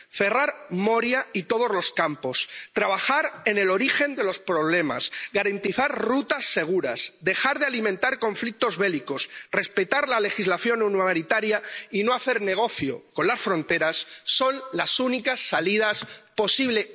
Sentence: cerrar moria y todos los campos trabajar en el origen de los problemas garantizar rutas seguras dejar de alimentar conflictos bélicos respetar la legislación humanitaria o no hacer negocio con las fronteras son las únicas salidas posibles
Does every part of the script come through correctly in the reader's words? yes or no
no